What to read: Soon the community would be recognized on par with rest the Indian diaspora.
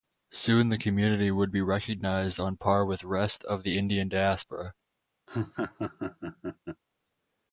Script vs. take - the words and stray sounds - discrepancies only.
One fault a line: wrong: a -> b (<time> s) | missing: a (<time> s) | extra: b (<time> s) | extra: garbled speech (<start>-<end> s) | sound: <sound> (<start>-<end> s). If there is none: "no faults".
extra: of (3.4 s)
sound: laugh (5.3-6.8 s)